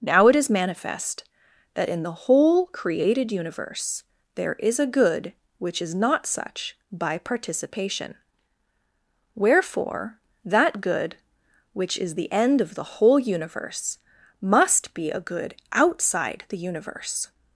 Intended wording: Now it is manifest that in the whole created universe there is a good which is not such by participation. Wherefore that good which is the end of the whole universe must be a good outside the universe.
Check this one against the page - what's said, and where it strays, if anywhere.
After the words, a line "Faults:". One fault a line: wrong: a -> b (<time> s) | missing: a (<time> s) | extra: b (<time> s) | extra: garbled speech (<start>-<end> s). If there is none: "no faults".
Now it is manifest that in the whole created universe there is a good which is not such by participation. Wherefore that good which is the end of the whole universe must be a good outside the universe.
Faults:
no faults